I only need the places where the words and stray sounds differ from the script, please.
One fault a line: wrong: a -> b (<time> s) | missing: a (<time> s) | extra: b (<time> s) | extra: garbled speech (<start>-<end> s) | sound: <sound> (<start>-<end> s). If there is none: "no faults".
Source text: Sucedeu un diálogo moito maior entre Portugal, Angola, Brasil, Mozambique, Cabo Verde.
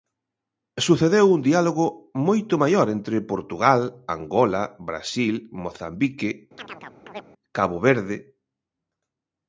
sound: chirp (6.6-7.2 s)